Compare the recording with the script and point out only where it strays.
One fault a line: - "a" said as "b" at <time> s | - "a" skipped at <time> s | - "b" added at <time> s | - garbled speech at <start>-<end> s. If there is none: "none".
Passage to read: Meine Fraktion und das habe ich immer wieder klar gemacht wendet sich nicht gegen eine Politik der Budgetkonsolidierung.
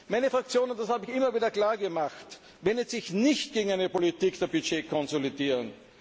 none